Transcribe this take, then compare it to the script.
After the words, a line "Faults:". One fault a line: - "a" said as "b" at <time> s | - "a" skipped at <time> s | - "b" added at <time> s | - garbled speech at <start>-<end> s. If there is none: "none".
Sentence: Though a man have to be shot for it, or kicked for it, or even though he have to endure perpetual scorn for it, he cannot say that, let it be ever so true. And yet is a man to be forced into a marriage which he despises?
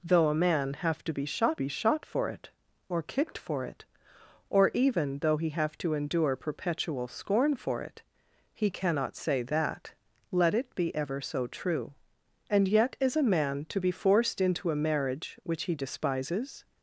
Though a man have to be shot be shot for it, or kicked for it, or even though he have to endure perpetual scorn for it, he cannot say that, let it be ever so true. And yet is a man to be forced into a marriage which he despises?
Faults:
- "be shot" added at 1.6 s